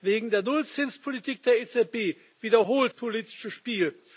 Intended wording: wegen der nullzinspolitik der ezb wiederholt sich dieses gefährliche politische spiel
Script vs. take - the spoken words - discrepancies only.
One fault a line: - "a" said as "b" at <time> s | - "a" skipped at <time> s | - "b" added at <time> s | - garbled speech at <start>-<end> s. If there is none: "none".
- "sich dieses gefährliche" skipped at 2.9 s